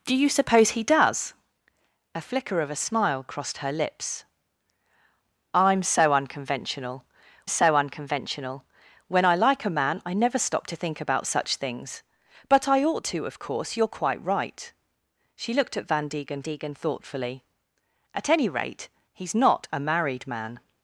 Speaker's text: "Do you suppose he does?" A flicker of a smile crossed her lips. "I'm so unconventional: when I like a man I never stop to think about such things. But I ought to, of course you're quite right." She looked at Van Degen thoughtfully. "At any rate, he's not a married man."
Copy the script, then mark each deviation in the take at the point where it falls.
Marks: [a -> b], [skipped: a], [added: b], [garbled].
"Do you suppose he does?" A flicker of a smile crossed her lips. "I'm so unconventional: [added: so unconventional] when I like a man I never stop to think about such things. But I ought to, of course you're quite right." She looked at Van Degen [added: Degen] thoughtfully. "At any rate, he's not a married man."